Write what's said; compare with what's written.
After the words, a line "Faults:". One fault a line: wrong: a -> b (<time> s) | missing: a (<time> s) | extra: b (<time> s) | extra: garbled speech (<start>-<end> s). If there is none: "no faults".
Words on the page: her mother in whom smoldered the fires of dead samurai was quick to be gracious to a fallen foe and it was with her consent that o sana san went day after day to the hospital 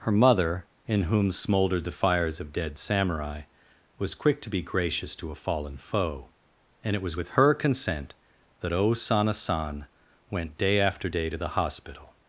her mother in whom smoldered the fires of dead samurai was quick to be gracious to a fallen foe and it was with her consent that o sana san went day after day to the hospital
Faults:
no faults